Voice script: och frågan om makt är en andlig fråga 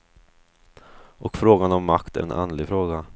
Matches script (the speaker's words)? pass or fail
pass